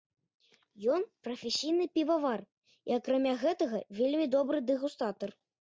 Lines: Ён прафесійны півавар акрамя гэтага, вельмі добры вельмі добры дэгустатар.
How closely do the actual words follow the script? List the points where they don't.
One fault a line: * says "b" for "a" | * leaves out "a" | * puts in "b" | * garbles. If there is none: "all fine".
* puts in "і"
* leaves out "вельмі добры"